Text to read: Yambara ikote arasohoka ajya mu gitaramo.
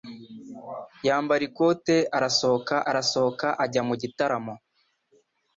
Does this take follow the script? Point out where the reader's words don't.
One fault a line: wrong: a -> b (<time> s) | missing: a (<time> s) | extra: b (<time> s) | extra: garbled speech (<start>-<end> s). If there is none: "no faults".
extra: arasohoka (2.9 s)